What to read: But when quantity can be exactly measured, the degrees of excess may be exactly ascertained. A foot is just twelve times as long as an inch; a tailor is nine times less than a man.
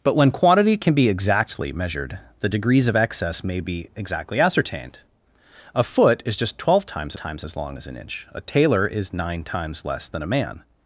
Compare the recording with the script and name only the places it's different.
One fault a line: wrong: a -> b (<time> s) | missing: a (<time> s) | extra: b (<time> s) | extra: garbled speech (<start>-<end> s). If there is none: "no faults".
extra: times (7.1 s)